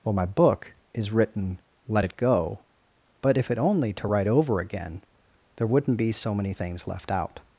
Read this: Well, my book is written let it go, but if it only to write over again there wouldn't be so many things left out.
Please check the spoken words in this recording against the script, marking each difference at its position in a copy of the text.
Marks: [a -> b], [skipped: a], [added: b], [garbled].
Well, my book is written let it go, but if it only to write over again there wouldn't be so many things left out.